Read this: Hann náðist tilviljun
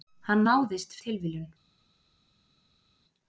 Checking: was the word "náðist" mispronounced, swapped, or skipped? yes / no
no